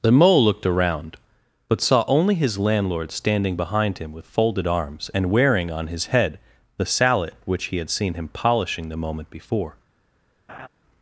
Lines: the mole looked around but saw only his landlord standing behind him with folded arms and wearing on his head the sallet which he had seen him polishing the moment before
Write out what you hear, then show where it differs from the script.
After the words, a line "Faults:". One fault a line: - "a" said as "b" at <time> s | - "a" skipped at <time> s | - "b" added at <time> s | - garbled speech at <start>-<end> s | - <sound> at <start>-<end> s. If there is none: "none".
the mole looked around but saw only his landlord standing behind him with folded arms and wearing on his head the sallet which he had seen him polishing the moment before
Faults:
- laugh at 10.5-10.7 s